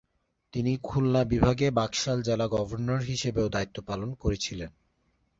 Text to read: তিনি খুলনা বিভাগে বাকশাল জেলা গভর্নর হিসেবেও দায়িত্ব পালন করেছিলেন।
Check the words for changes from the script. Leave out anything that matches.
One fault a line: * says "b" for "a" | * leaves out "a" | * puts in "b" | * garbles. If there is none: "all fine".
all fine